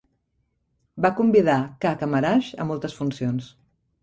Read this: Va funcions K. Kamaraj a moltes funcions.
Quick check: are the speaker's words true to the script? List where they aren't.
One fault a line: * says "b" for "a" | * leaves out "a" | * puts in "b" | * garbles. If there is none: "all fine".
* says "convidar" for "funcions"